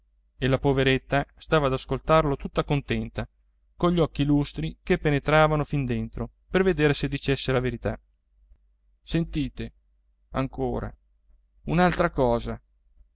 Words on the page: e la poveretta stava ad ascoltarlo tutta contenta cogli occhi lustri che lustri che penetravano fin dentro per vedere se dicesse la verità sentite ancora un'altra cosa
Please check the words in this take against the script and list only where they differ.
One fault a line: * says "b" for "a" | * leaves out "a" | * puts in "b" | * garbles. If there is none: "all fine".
* leaves out "lustri che"